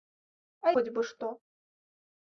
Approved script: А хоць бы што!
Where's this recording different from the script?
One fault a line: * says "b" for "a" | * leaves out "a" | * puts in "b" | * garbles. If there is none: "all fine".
all fine